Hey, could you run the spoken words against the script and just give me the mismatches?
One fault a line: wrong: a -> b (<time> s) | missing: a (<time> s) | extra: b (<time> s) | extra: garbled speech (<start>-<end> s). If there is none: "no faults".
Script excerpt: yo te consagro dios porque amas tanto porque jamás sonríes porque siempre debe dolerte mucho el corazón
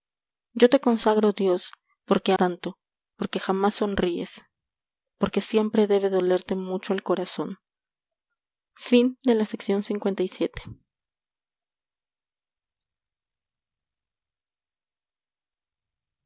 missing: amas (2.3 s)